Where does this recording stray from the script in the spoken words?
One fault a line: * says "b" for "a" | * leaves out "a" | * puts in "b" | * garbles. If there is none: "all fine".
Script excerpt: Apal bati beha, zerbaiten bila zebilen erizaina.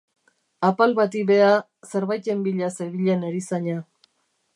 all fine